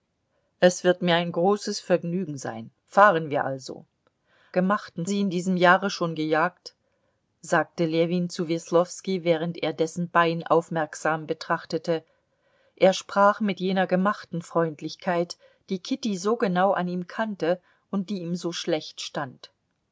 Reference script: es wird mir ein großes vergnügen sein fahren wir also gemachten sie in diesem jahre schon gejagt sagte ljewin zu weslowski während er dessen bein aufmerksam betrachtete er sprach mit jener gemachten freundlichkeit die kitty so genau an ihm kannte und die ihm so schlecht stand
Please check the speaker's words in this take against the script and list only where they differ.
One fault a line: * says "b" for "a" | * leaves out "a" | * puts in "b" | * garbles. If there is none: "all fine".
all fine